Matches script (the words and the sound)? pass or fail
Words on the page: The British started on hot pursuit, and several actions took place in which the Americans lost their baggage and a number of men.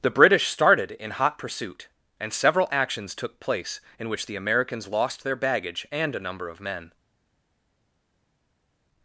fail